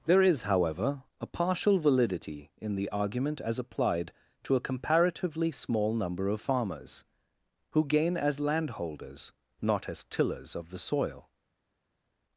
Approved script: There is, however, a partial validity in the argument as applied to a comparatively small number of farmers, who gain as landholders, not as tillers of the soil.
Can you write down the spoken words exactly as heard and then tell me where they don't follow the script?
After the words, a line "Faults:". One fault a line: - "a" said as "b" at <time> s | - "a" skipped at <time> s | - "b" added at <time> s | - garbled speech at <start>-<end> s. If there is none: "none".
There is, however, a partial validity in the argument as applied to a comparatively small number of farmers, who gain as landholders, not as tillers of the soil.
Faults:
none